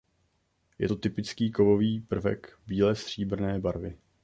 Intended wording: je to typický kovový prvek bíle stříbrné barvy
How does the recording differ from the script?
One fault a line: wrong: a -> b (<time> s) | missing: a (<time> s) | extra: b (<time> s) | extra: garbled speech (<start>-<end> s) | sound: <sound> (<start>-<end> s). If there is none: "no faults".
no faults